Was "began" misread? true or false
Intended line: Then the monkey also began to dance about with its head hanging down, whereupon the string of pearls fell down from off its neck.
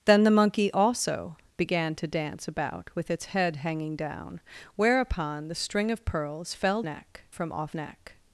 false